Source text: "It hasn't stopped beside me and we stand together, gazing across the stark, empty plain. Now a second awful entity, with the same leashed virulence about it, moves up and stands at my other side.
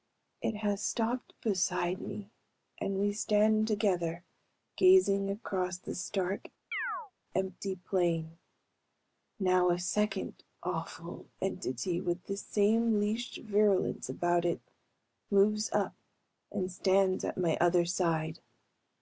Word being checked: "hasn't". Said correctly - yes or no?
no